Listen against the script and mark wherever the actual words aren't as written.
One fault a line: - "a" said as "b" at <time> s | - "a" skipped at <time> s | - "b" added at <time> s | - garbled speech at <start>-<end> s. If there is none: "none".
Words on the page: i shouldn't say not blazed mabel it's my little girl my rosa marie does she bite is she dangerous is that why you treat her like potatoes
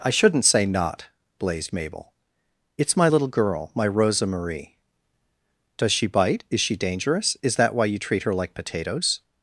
none